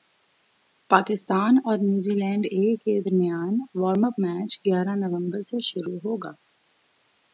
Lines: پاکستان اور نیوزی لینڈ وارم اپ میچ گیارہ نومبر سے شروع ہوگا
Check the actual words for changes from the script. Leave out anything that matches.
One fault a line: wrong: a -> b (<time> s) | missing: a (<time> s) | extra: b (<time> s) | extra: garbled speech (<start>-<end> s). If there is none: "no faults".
extra: اے کے درمیان (2.5 s)